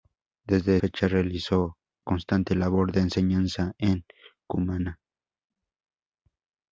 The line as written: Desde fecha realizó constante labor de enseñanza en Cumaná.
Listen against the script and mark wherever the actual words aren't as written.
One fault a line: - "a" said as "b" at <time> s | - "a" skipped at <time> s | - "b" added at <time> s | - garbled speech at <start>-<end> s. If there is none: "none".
none